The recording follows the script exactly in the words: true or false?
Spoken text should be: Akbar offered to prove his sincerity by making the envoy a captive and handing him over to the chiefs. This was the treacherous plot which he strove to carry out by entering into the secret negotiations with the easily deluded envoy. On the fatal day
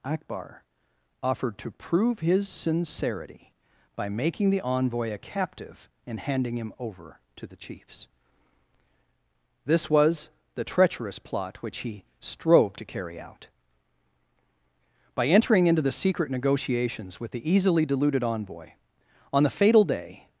true